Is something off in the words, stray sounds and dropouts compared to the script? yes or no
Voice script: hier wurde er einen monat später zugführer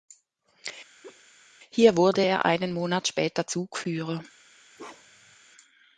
yes